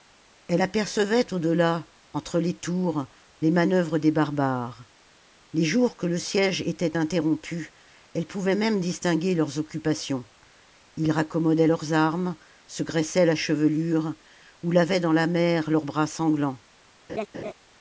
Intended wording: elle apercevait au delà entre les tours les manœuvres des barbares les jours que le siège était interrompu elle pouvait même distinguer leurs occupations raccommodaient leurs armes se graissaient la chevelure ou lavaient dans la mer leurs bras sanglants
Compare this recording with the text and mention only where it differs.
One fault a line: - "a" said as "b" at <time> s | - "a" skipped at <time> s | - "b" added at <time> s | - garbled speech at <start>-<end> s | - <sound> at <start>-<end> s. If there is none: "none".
- "ils" added at 11.0 s
- laugh at 17.1-17.5 s